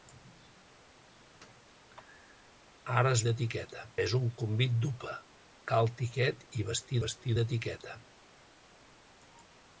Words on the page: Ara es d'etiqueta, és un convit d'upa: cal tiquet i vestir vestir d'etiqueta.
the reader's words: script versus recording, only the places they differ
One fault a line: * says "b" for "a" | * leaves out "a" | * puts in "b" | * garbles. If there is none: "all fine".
all fine